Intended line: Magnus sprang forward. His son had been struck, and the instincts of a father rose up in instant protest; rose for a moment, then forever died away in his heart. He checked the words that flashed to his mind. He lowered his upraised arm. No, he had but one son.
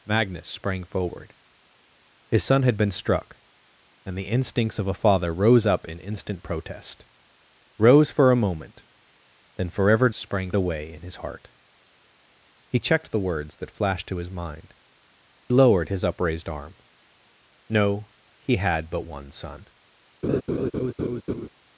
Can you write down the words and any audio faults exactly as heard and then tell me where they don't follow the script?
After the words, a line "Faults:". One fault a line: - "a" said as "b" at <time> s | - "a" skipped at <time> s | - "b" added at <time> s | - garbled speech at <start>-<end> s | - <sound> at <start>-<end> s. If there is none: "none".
Magnus sprang forward. His son had been struck, and the instincts of a father rose up in instant protest; rose for a moment, then forever sprang away in his heart. He checked the words that flashed to his mind. Lowered his upraised arm. No, he had but one son.
Faults:
- "died" said as "sprang" at 10.1 s
- "He" skipped at 14.7 s
- laugh at 20.2-21.5 s